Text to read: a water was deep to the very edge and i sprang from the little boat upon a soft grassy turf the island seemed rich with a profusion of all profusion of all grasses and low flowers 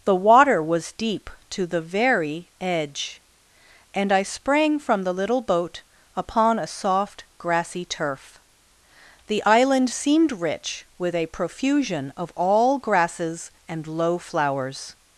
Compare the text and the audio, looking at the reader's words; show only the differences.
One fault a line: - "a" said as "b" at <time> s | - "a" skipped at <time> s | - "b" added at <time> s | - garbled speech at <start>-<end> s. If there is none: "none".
- "a" said as "the" at 0.0 s
- "profusion of all" skipped at 12.8 s